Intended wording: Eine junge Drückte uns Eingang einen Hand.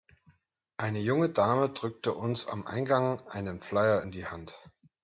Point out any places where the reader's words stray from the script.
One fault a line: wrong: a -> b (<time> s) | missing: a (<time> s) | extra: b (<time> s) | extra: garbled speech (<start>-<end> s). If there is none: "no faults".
extra: Dame (1.3 s)
extra: am (2.5 s)
extra: Flyer in die (3.6 s)